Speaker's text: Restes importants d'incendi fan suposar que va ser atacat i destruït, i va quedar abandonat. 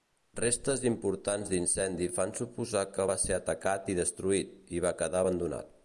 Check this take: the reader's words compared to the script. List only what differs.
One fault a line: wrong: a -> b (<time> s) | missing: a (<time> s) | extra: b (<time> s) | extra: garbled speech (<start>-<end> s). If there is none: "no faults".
no faults